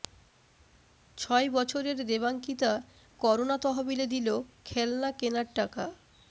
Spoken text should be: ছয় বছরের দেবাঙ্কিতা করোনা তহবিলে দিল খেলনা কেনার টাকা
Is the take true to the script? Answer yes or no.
yes